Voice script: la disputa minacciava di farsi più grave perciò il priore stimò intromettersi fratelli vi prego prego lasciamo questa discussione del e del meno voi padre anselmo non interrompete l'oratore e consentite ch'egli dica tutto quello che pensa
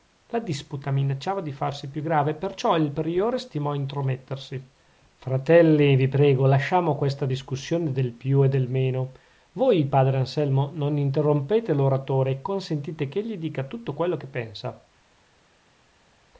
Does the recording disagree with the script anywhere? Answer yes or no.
yes